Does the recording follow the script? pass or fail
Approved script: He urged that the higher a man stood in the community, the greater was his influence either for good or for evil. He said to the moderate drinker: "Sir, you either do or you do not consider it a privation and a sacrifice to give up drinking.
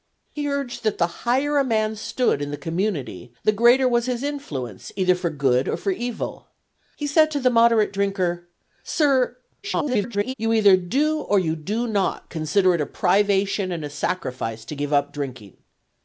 fail